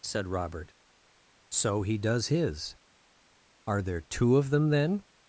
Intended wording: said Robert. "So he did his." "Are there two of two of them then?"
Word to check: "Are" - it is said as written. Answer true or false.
true